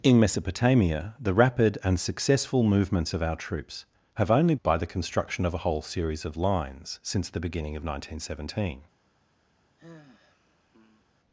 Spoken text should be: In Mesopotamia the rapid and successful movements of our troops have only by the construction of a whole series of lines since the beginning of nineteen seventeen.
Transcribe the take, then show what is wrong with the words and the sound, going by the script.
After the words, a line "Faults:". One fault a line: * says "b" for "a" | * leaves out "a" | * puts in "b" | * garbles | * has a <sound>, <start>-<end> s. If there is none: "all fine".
In Mesopotamia the rapid and successful movements of our troops have only by the construction of a whole series of lines since the beginning of nineteen seventeen.
Faults:
* has a sigh, 9.8-11.1 s